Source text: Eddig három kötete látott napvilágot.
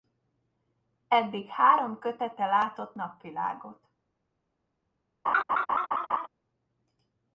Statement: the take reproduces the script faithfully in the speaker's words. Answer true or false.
true